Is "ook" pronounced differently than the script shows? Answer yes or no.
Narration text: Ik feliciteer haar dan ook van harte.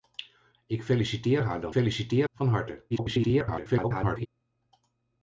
yes